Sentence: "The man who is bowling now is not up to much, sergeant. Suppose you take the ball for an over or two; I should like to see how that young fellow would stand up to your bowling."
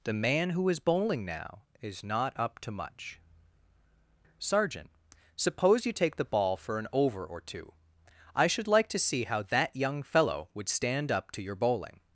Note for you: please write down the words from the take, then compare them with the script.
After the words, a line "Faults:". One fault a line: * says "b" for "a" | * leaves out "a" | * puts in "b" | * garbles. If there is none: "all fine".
"The man who is bowling now is not up to much, sergeant. Suppose you take the ball for an over or two; I should like to see how that young fellow would stand up to your bowling."
Faults:
all fine